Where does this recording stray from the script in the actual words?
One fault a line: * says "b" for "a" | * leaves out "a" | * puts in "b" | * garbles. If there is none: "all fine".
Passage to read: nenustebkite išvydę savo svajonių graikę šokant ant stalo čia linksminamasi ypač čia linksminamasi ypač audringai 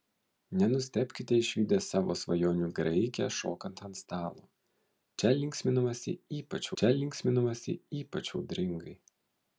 all fine